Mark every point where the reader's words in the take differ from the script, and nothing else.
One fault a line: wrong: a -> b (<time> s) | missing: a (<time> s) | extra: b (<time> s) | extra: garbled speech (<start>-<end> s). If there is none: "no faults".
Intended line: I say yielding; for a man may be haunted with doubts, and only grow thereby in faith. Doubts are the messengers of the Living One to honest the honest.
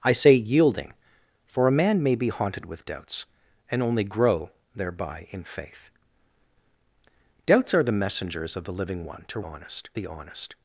no faults